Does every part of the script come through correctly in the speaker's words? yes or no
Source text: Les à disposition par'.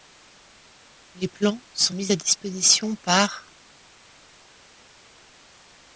no